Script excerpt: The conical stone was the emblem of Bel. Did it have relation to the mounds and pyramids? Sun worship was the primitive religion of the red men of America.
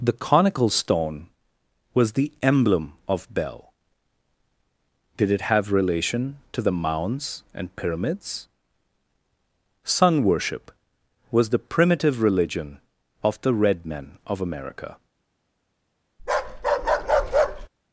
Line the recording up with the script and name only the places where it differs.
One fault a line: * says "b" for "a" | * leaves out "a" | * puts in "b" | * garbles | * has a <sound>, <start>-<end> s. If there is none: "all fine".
* has a bark, 16.2-17.7 s